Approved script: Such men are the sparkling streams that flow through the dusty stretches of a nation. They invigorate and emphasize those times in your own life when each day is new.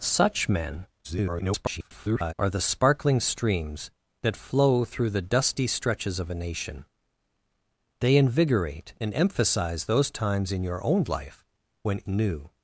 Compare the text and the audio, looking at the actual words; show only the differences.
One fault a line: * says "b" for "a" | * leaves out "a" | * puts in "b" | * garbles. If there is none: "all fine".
* garbles
* leaves out "each day is"